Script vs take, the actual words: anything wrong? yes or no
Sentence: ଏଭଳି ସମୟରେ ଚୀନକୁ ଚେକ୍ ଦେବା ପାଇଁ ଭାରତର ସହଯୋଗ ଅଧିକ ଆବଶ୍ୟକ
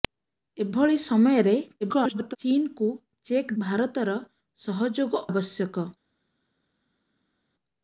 yes